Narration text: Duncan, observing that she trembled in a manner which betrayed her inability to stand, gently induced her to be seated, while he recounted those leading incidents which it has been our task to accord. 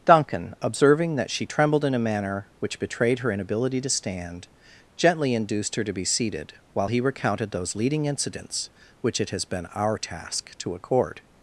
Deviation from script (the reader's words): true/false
false